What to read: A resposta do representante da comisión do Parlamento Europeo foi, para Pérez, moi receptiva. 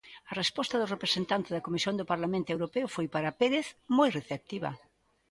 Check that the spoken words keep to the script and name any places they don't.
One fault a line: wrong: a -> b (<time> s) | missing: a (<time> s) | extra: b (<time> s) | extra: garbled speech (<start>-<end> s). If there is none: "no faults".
no faults